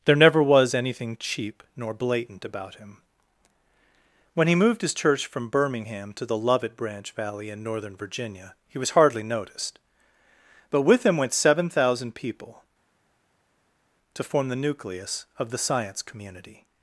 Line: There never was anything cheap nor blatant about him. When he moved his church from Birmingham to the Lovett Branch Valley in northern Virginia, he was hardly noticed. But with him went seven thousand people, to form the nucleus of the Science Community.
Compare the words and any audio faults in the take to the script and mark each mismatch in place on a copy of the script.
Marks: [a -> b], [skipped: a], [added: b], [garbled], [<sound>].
There never was anything cheap nor blatant about him. When he moved his church from Birmingham to the Lovett Branch Valley in northern Virginia, he was hardly noticed. But with him went seven thousand people, to form the nucleus of the Science Community.